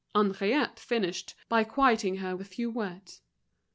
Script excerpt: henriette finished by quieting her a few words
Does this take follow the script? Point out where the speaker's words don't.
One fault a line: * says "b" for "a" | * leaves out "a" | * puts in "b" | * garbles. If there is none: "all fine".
all fine